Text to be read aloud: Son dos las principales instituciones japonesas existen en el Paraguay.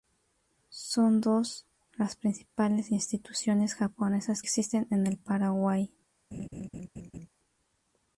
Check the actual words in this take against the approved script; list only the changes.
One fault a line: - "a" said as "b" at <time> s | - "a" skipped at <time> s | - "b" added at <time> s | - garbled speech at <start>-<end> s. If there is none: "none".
none